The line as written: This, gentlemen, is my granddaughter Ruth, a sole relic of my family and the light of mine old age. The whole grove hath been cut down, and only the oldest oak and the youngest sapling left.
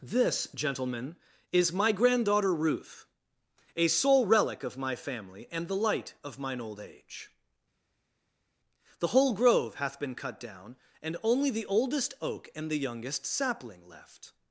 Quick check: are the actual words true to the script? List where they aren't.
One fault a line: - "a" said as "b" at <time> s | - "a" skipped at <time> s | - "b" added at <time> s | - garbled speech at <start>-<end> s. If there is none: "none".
none